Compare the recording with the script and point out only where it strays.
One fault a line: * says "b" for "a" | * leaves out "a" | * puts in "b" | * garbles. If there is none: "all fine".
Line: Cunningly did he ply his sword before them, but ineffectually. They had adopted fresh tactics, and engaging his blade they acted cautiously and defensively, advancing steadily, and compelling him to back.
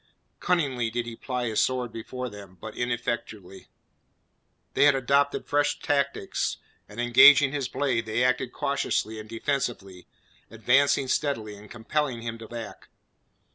all fine